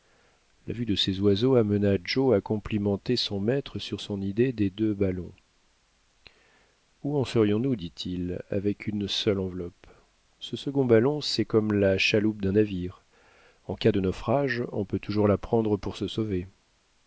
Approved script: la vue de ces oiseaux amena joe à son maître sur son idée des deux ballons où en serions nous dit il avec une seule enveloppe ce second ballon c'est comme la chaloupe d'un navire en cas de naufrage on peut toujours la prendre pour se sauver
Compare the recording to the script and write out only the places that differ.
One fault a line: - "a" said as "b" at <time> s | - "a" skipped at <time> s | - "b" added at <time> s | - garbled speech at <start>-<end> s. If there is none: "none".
- "complimenter" added at 2.4 s